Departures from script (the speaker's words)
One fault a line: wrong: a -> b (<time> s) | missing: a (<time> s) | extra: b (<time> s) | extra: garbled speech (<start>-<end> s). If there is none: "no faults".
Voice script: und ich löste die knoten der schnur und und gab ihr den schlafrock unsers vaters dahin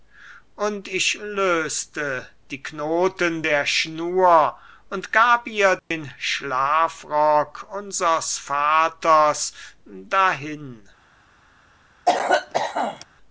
missing: und (5.1 s)